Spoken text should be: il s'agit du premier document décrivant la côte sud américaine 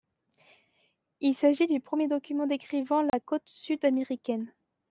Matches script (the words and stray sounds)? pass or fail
fail